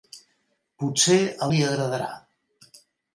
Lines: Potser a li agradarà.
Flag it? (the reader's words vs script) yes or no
no